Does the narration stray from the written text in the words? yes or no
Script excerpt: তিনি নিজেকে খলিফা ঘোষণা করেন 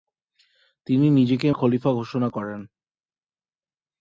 no